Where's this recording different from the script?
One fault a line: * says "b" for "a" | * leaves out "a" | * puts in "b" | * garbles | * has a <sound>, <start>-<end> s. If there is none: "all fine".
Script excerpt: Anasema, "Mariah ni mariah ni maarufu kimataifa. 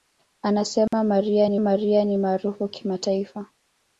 * has a dropout, 0.9-0.9 s